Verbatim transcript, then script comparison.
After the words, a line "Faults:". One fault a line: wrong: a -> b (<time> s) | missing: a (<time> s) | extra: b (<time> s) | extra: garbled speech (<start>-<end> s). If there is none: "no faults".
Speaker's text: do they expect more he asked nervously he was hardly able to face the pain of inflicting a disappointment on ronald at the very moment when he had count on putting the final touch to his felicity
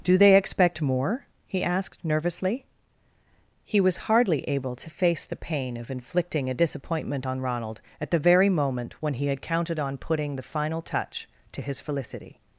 do they expect more he asked nervously he was hardly able to face the pain of inflicting a disappointment on ronald at the very moment when he had counted on putting the final touch to his felicity
Faults:
wrong: count -> counted (9.4 s)